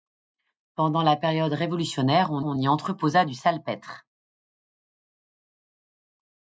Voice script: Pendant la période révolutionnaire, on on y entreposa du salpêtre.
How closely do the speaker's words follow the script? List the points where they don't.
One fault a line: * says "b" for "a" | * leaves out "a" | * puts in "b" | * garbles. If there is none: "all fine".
all fine